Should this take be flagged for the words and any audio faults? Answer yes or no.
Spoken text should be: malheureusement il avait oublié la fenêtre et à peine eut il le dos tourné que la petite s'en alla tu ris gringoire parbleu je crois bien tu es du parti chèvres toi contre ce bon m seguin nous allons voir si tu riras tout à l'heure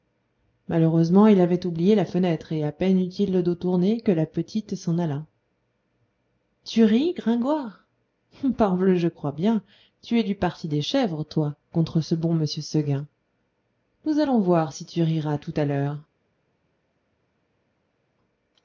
yes